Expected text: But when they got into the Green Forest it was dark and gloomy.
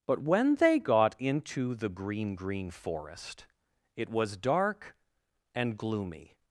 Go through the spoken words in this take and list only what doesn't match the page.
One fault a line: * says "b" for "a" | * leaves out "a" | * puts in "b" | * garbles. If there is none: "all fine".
* puts in "Green"